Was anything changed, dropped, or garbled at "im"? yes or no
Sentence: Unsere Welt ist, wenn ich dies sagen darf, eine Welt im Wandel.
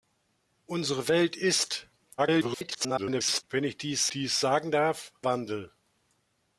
yes